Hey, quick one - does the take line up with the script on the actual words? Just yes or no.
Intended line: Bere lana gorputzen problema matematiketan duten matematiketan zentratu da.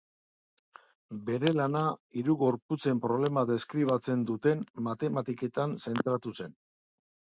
no